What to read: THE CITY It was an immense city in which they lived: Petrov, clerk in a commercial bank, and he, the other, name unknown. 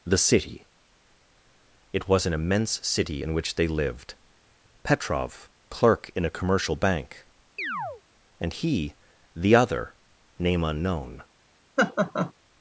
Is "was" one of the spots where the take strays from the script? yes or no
no